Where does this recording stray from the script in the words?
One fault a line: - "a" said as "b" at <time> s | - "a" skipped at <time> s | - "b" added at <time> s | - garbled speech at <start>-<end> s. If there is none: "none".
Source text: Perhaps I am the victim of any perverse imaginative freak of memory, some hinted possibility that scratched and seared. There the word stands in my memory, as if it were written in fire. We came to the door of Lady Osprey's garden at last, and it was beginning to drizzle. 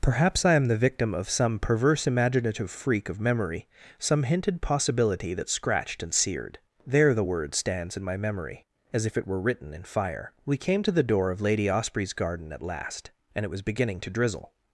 - "any" said as "some" at 1.3 s